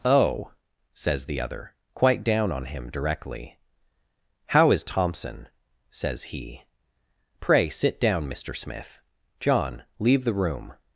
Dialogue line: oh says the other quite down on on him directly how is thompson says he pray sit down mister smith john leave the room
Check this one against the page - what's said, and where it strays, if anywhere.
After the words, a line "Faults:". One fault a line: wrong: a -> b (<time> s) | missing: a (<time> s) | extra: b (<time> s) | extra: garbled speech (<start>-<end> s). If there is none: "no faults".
oh says the other quite down on him directly how is thompson says he pray sit down mister smith john leave the room
Faults:
missing: on (2.6 s)